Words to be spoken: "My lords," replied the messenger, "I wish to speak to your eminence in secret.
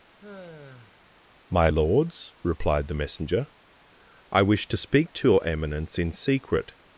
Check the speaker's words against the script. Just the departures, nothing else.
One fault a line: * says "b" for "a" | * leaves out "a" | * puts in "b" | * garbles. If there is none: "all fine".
all fine